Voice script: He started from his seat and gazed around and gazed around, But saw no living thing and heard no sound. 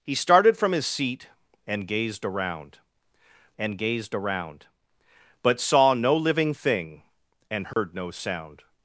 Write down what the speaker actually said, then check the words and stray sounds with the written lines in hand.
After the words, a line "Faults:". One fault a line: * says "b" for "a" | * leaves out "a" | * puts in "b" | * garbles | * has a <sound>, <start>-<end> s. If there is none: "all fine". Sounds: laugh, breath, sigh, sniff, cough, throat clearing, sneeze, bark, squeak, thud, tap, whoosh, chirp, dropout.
He started from his seat and gazed around and gazed around, But saw no living thing and heard no sound.
Faults:
* has a dropout, 7.7-7.8 s